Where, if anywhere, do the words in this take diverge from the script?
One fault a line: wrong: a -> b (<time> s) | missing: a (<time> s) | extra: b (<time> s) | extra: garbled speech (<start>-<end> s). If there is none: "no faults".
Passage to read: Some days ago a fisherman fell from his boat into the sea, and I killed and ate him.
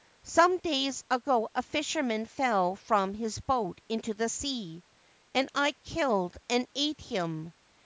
no faults